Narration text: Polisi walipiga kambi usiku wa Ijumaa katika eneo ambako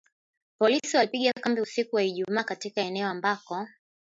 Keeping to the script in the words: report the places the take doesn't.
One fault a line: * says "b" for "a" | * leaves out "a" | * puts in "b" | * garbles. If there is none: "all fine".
all fine